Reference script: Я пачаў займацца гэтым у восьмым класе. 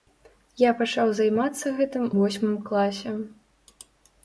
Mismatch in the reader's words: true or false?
true